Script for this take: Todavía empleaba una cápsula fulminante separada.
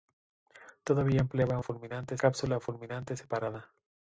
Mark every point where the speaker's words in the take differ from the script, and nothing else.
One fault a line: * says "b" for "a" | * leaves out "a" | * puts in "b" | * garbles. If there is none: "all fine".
* says "fulminante" for "una"